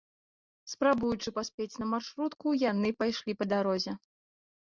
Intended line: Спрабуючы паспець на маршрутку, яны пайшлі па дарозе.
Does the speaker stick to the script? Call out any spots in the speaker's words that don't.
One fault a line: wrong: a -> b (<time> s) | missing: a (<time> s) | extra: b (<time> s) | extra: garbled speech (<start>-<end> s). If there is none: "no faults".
no faults